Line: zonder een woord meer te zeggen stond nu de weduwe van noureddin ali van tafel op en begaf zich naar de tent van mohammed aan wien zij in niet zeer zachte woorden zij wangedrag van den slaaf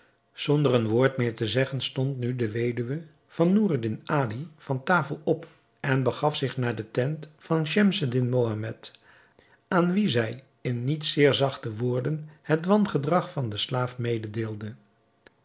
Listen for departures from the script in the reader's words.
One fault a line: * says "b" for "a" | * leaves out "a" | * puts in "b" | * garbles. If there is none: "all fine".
* puts in "schemseddin"
* says "het" for "zij"